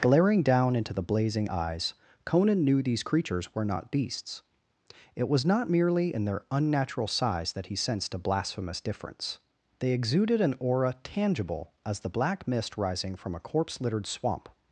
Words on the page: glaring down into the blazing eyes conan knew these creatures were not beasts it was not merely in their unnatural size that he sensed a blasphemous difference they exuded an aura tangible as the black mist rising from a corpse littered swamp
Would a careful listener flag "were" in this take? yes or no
no